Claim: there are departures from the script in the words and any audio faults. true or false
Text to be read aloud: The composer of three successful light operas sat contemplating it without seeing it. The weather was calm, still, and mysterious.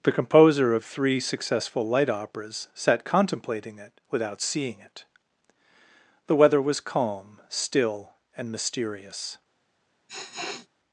true